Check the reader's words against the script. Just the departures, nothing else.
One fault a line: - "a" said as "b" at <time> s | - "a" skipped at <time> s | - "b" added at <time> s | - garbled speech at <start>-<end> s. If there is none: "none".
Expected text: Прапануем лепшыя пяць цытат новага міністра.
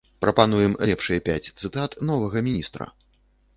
none